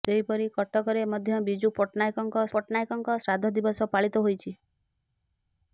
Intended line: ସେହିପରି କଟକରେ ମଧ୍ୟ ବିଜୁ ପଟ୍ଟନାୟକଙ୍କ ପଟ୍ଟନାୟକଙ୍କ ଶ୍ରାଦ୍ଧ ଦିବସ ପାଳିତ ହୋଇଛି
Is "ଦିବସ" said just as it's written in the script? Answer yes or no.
yes